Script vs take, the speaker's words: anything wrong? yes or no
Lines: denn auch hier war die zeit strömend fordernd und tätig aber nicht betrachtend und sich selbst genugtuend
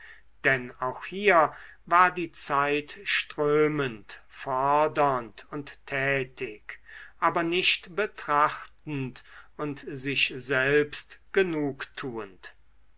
no